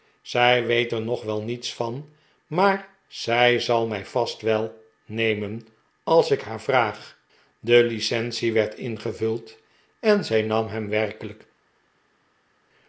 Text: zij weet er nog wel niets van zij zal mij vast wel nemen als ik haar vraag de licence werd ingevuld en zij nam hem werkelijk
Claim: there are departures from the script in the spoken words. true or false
true